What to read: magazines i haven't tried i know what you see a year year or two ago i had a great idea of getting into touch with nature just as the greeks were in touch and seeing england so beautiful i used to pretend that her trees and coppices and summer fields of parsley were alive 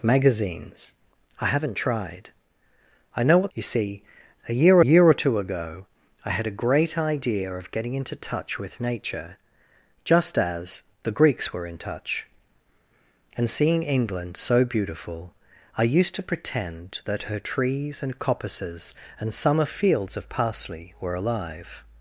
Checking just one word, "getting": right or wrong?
right